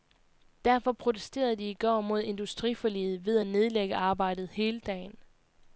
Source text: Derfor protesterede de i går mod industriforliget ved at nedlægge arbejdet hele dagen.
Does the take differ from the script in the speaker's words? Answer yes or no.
no